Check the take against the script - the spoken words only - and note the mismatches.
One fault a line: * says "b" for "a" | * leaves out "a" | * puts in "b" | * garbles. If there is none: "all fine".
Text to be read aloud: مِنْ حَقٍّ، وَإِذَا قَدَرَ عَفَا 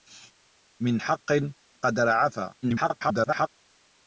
* leaves out "وَإِذَا"
* garbles